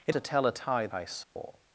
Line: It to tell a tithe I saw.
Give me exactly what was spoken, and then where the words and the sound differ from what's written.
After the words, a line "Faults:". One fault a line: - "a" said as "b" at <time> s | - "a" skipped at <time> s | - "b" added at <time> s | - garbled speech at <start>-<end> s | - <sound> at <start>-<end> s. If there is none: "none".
It to tell a tithe I saw.
Faults:
- dropout at 1.2-1.4 s